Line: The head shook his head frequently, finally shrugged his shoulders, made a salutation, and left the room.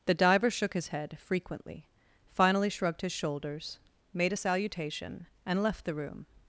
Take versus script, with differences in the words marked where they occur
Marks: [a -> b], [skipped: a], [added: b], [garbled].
The [head -> diver] shook his head frequently, finally shrugged his shoulders, made a salutation, and left the room.